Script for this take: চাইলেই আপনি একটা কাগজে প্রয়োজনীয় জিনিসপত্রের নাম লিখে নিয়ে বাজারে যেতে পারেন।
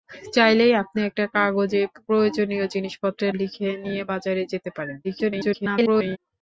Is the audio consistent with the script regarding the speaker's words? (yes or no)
no